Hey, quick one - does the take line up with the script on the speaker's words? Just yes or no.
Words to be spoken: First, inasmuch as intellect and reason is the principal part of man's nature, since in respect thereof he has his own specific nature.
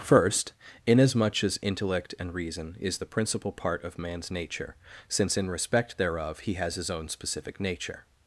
yes